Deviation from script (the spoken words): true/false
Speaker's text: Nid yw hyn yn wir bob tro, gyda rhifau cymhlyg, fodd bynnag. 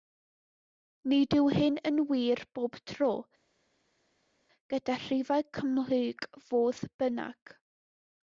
false